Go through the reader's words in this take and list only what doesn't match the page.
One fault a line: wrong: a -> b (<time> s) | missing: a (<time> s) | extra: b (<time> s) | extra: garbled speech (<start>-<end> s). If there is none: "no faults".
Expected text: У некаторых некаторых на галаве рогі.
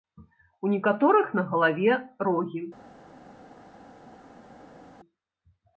missing: некаторых (1.3 s)